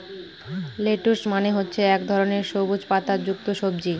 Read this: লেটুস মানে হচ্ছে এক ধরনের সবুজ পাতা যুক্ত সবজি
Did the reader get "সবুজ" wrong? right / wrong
right